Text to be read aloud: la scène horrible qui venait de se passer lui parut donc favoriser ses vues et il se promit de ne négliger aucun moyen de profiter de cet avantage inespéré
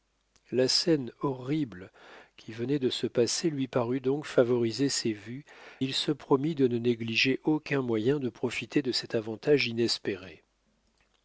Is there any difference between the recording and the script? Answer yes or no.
yes